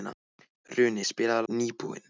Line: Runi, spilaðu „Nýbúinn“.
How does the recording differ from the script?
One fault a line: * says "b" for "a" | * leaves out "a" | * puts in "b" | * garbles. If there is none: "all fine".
all fine